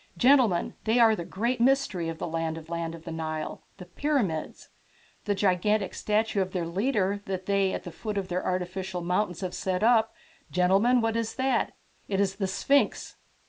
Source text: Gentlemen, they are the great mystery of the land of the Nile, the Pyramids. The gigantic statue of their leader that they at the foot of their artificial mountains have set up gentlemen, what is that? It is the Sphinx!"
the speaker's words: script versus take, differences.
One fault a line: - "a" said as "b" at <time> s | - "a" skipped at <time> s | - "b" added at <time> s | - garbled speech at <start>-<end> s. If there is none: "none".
- "land of" added at 2.7 s